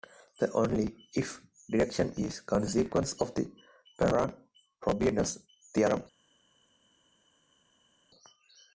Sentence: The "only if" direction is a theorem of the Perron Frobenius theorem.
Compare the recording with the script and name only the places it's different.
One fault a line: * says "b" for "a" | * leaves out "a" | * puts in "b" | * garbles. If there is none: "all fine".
* says "consequence" for "theorem"